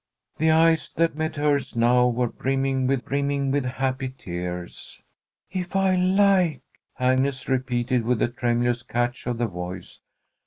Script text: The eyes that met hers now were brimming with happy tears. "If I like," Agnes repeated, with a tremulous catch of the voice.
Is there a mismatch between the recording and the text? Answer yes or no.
yes